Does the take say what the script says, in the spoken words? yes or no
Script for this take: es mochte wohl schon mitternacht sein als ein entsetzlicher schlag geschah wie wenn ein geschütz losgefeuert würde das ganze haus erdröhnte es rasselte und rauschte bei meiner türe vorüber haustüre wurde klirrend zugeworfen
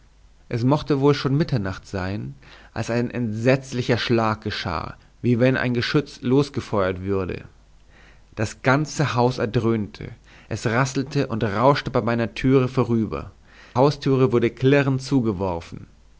yes